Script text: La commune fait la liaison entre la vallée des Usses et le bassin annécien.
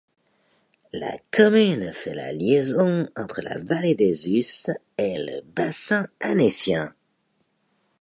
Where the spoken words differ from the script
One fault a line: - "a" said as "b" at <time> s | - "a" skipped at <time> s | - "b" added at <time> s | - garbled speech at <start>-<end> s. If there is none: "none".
none